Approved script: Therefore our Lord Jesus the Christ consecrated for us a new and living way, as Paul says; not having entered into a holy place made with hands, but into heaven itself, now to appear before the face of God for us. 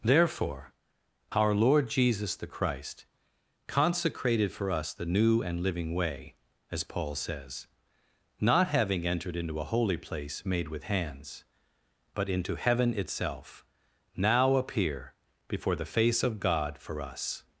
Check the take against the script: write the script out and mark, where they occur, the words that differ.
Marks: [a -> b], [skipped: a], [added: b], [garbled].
Therefore our Lord Jesus the Christ consecrated for us [a -> the] new and living way, as Paul says; not having entered into a holy place made with hands, but into heaven itself, now [skipped: to] appear before the face of God for us.